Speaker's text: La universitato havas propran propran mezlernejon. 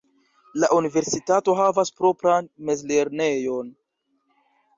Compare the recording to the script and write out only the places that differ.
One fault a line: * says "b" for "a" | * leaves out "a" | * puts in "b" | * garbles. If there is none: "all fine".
* leaves out "propran"